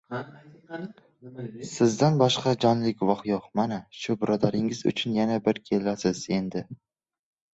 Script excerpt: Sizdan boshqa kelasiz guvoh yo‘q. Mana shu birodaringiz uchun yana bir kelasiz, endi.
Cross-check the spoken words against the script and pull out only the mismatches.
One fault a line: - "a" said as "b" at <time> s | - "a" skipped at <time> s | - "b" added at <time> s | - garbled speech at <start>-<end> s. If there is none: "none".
- "kelasiz" said as "jonli" at 2.6 s